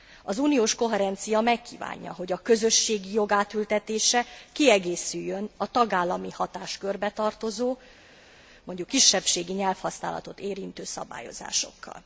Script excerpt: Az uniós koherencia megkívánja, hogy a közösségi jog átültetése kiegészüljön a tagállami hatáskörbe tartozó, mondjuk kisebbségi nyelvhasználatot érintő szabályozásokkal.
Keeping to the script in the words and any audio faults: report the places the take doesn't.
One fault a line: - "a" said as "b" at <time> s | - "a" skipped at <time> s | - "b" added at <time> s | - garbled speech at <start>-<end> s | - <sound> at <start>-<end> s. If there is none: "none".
none